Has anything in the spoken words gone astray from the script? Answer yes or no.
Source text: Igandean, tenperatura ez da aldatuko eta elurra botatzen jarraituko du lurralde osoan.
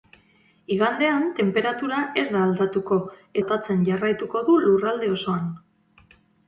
yes